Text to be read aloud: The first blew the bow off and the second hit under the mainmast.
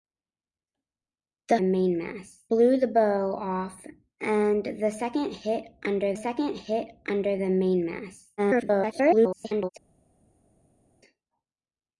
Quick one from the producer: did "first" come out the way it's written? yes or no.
no